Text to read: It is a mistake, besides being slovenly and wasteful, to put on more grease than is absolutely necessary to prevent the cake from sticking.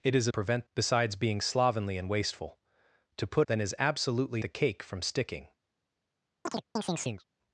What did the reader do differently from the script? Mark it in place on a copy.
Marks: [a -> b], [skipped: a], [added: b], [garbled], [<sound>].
It is a [mistake, -> prevent] besides being slovenly and wasteful, to put [skipped: on more grease] than is absolutely [skipped: necessary to prevent] the cake from sticking. [chirp]